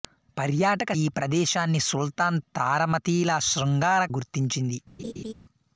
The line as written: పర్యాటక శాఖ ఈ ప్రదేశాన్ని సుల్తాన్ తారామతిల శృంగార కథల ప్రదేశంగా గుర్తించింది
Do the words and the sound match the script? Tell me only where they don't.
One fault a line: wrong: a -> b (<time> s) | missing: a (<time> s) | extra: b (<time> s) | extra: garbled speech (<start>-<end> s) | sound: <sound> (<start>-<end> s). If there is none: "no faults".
missing: శాఖ (0.9 s)
missing: కథల ప్రదేశంగా (4.0 s)
sound: laugh (5.0-5.3 s)